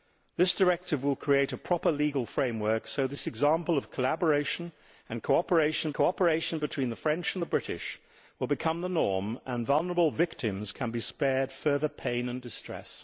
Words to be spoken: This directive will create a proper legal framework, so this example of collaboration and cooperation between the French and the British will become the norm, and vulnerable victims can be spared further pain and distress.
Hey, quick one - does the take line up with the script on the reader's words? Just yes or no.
no